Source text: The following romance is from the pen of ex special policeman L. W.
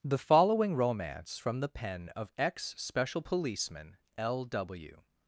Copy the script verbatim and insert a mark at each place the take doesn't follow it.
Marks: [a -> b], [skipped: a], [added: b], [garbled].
The following romance [skipped: is] from the pen of ex special policeman L. W.